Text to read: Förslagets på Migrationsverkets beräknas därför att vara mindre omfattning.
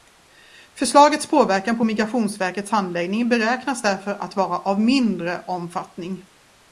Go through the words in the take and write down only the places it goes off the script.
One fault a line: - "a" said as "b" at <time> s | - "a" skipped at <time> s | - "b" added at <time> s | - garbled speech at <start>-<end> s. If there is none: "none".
- "påverkan" added at 1.3 s
- "handläggning" added at 2.7 s
- "av" added at 4.6 s